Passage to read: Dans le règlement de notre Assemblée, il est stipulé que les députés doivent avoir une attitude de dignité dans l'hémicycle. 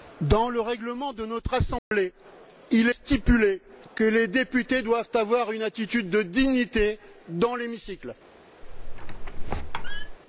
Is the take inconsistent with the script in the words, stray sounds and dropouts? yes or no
yes